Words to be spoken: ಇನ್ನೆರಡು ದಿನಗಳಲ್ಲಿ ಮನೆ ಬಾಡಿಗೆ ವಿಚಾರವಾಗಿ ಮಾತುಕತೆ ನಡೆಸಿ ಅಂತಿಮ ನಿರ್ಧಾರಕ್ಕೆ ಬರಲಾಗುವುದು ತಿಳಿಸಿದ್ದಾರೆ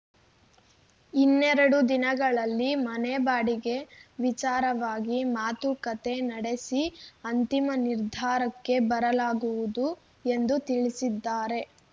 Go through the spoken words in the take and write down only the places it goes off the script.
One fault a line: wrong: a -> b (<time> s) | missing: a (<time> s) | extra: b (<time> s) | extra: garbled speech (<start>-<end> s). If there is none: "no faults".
extra: ಎಂದು (10.3 s)